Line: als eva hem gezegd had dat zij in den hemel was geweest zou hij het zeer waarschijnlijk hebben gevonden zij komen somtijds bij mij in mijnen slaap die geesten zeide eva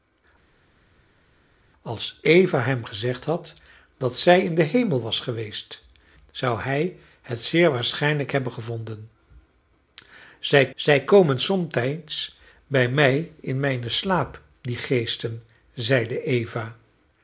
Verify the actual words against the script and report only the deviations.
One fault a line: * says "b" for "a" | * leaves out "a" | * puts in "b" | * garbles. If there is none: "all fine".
* puts in "zij"